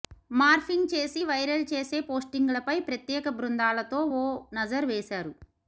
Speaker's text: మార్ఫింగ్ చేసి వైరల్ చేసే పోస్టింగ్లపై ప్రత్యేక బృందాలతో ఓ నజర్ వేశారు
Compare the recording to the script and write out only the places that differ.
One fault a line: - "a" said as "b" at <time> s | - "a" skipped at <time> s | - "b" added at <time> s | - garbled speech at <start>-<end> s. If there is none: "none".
none